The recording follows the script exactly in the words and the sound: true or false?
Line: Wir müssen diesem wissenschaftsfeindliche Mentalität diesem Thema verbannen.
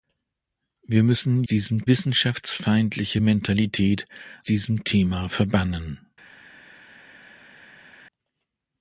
true